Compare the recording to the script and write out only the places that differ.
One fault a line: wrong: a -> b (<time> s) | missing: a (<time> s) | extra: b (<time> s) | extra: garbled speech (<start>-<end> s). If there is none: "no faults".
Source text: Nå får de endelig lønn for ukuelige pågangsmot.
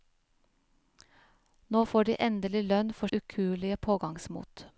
no faults